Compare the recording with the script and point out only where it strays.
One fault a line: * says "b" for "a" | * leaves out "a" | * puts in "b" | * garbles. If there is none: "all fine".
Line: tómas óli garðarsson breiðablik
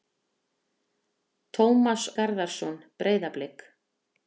* leaves out "óli"